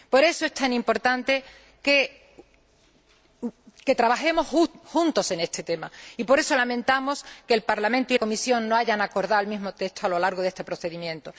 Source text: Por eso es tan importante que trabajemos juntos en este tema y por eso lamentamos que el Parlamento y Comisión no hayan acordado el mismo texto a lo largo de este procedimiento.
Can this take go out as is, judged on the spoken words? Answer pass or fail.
pass